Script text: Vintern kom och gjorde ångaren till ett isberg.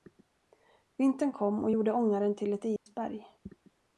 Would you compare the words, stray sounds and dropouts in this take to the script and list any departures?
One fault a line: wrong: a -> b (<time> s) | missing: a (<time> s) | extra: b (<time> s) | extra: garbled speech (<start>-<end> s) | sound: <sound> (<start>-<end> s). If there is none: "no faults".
sound: dropout (2.8-2.9 s)